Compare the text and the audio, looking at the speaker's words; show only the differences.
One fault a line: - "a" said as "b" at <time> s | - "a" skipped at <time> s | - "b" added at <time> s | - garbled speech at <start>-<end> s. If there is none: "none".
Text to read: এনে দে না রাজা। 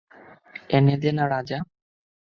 none